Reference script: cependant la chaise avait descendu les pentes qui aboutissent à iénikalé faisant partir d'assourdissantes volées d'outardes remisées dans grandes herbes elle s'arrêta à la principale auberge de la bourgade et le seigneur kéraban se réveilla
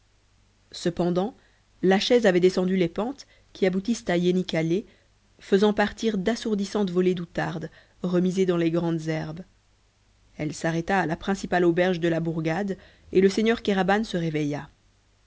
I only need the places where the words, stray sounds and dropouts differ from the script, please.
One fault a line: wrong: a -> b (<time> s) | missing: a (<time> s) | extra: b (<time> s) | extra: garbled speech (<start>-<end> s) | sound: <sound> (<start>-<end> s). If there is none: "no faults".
extra: les (8.6 s)